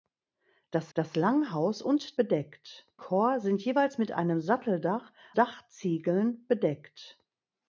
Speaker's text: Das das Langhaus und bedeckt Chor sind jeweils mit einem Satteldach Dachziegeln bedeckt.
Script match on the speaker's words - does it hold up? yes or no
yes